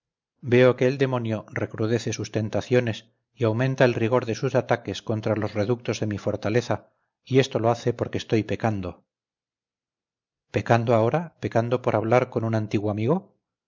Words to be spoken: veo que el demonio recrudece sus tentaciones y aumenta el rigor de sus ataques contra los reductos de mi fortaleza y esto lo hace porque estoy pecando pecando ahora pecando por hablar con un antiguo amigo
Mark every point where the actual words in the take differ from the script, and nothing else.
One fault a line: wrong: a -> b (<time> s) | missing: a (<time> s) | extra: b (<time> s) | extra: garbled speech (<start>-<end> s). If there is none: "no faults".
no faults